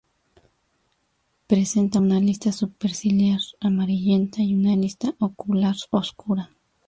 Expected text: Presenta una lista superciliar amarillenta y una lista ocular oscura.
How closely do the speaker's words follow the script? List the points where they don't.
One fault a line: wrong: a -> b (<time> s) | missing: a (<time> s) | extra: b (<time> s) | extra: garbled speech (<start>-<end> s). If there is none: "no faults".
no faults